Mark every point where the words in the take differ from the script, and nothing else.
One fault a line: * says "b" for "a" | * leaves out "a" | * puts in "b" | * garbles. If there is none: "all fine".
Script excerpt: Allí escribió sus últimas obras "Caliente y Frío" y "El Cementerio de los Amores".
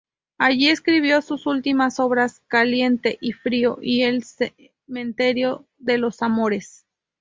all fine